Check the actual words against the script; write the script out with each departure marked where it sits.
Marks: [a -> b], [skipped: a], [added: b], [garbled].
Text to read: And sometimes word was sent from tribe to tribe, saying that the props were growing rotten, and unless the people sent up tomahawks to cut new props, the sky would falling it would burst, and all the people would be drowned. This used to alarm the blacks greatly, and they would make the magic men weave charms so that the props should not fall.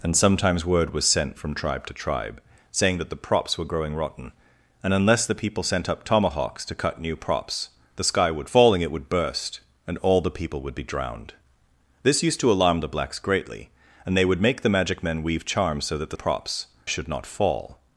And sometimes word was sent from tribe to tribe, saying that the props were growing rotten, and unless the people sent up tomahawks to cut new props, the sky would falling it would burst, and all the people would be drowned. This used to alarm the blacks greatly, and they would make the magic men weave charms so that the props should not fall.